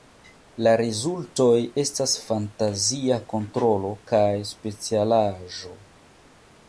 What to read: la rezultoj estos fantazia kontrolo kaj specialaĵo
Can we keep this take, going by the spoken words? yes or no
no